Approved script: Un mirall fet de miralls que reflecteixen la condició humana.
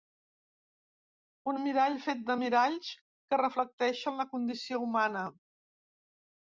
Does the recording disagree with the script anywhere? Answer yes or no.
no